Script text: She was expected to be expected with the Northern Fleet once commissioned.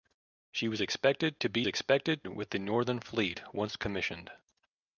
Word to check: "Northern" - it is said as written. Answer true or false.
true